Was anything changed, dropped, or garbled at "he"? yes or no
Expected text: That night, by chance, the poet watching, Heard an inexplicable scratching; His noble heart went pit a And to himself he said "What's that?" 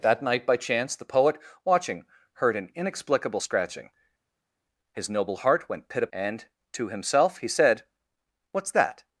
no